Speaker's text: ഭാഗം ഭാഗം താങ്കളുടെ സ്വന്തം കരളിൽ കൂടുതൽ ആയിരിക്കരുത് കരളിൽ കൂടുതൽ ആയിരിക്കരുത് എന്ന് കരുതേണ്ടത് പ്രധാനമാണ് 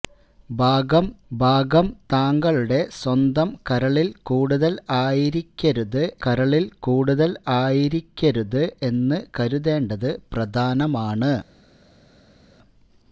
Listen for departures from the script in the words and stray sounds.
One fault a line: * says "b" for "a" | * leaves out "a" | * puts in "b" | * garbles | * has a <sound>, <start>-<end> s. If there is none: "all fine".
all fine